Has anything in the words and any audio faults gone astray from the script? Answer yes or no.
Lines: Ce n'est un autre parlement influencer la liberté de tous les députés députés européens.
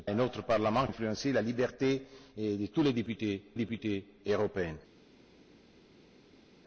no